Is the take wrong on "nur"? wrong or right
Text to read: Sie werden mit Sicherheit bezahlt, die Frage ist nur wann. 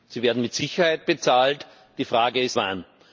wrong